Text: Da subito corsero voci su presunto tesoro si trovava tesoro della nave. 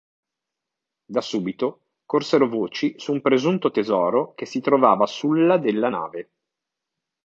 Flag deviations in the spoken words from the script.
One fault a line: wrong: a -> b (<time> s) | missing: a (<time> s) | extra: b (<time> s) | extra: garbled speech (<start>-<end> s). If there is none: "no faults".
extra: un (3.1 s)
extra: che (4.3 s)
wrong: tesoro -> sulla (5.0 s)